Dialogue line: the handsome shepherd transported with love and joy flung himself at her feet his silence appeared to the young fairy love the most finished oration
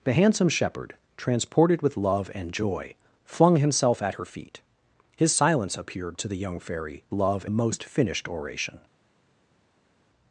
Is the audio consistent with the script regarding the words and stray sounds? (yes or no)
yes